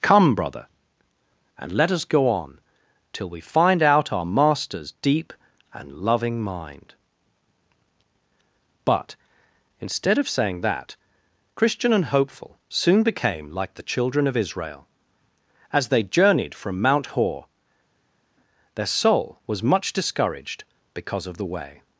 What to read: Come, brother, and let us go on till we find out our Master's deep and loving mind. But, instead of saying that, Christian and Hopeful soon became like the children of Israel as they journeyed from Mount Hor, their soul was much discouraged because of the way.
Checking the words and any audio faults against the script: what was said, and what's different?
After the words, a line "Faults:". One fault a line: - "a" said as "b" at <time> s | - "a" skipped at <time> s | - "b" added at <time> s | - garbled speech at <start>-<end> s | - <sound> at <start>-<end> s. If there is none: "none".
Come, brother, and let us go on till we find out our Master's deep and loving mind. But, instead of saying that, Christian and Hopeful soon became like the children of Israel as they journeyed from Mount Hor, their soul was much discouraged because of the way.
Faults:
none